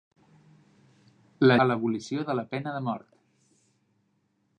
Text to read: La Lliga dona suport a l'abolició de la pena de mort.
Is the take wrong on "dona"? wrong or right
wrong